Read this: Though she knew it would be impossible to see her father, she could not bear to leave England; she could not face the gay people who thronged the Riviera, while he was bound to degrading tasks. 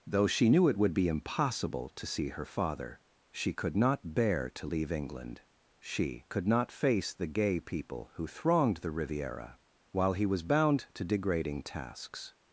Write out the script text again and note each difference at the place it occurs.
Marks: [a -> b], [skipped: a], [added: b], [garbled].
Though she knew it would be impossible to see her father, she could not bear to leave England; she could not face the gay people who thronged the Riviera, while he was bound to degrading tasks.